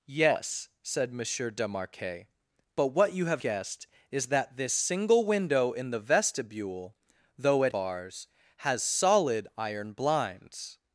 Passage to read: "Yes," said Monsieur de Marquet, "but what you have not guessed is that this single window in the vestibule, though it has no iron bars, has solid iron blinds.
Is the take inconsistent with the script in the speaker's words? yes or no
yes